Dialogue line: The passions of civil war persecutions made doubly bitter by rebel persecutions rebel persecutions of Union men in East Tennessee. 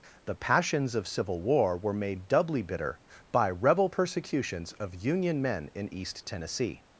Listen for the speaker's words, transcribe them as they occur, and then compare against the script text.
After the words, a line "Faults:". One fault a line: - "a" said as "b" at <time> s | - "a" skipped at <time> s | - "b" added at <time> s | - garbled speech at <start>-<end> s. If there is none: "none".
The passions of civil war were made doubly bitter by rebel persecutions of Union men in East Tennessee.
Faults:
- "persecutions" said as "were" at 1.8 s
- "rebel persecutions" skipped at 4.7 s